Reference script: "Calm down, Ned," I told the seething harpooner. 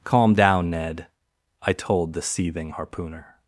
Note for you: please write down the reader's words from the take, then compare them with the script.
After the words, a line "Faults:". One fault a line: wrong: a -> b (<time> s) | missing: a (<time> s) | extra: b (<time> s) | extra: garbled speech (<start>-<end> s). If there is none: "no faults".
"Calm down, Ned," I told the seething harpooner.
Faults:
no faults